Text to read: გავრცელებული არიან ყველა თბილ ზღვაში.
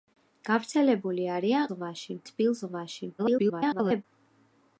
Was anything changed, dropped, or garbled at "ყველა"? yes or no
yes